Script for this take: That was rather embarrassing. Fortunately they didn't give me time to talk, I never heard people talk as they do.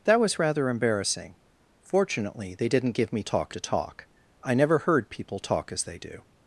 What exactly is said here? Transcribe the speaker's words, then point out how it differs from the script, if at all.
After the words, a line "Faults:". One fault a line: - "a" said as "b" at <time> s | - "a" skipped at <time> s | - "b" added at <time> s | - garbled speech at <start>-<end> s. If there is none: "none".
That was rather embarrassing. Fortunately they didn't give me talk to talk, I never heard people talk as they do.
Faults:
- "time" said as "talk" at 3.2 s